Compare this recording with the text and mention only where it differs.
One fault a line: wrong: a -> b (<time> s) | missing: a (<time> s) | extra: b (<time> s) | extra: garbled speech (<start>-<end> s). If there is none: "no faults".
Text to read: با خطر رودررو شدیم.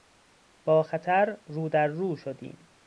no faults